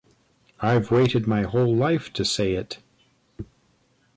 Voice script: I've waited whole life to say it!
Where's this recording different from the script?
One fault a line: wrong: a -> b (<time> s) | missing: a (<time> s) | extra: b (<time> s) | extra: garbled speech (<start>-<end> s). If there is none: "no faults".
extra: my (1.3 s)